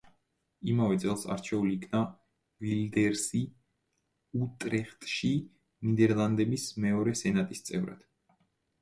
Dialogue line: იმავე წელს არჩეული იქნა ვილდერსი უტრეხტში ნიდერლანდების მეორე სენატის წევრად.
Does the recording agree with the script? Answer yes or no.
yes